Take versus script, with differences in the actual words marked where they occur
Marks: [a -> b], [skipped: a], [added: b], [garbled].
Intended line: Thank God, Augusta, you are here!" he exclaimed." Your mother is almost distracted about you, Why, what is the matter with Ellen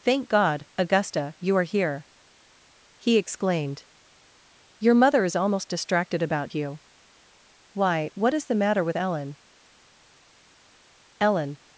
Thank God, Augusta, you are here!" he exclaimed." Your mother is almost distracted about you, Why, what is the matter with Ellen [added: Ellen]